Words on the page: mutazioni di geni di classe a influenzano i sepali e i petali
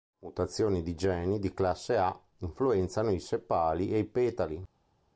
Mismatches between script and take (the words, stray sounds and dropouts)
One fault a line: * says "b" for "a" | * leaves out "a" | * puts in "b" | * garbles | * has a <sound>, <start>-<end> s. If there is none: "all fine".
all fine